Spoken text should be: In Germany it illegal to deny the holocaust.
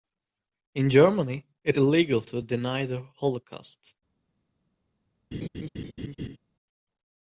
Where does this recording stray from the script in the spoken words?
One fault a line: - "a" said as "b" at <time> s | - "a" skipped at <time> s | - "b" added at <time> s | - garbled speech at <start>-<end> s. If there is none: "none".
none